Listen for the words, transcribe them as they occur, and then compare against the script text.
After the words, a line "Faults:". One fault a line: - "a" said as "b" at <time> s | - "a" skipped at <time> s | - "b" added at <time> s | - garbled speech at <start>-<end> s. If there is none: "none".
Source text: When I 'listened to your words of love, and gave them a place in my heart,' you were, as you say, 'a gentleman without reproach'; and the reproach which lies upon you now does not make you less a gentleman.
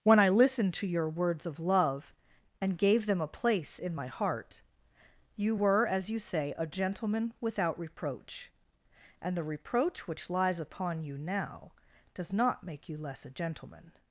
When I 'listened to your words of love, and gave them a place in my heart,' you were, as you say, 'a gentleman without reproach'; and the reproach which lies upon you now does not make you less a gentleman.
Faults:
none